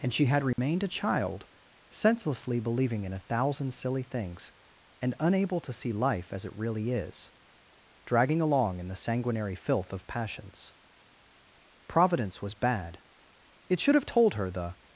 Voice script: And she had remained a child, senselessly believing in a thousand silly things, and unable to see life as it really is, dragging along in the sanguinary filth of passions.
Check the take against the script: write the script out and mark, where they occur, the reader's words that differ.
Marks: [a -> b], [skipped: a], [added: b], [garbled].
And she had remained a child, senselessly believing in a thousand silly things, and unable to see life as it really is, dragging along in the sanguinary filth of passions. [added: Providence was bad it should have told her the]